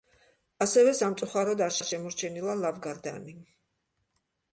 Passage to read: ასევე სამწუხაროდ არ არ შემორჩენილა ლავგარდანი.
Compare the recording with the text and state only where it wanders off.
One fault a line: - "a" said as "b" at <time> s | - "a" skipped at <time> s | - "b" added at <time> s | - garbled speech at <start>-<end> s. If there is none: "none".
none